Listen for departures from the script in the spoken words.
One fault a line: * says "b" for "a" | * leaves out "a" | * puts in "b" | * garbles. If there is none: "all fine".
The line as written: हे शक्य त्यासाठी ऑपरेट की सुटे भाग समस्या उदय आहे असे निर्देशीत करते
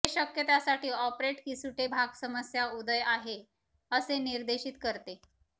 all fine